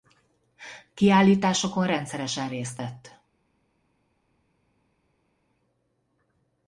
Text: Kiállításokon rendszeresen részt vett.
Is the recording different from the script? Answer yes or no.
no